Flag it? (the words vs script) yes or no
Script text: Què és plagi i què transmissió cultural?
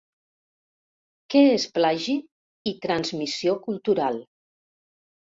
yes